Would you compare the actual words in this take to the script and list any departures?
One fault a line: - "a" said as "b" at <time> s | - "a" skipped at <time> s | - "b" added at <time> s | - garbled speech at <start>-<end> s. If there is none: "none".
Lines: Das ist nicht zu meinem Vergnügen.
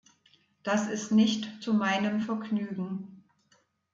none